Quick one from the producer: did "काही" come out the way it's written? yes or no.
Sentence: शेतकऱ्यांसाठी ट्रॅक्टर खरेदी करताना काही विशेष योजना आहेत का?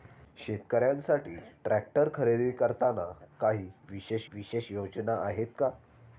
yes